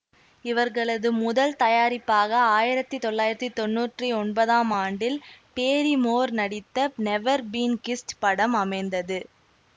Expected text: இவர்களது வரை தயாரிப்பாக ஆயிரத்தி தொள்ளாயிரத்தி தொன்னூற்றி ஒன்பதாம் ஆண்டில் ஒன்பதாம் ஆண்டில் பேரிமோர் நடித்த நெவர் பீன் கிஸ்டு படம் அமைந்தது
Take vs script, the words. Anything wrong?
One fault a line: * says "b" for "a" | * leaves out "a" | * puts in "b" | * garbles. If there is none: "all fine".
* says "முதல்" for "வரை"
* leaves out "ஒன்பதாம் ஆண்டில்"